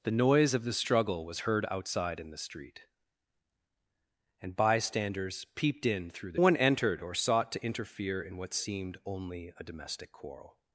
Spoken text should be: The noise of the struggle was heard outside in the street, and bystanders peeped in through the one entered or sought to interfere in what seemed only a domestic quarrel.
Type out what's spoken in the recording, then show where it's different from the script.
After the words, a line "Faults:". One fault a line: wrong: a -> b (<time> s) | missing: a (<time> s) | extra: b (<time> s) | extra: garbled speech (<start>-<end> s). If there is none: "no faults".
The noise of the struggle was heard outside in the street, and bystanders peeped in through the one entered or sought to interfere in what seemed only a domestic quarrel.
Faults:
no faults